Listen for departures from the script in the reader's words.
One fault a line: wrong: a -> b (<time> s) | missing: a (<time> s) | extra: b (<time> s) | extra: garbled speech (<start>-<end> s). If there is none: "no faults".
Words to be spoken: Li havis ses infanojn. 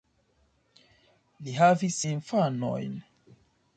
missing: ses (2.0 s)